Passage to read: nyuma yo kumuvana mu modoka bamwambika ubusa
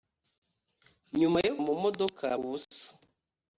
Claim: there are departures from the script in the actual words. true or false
true